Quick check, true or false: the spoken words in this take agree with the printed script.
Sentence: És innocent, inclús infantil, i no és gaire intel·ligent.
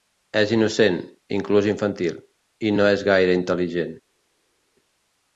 true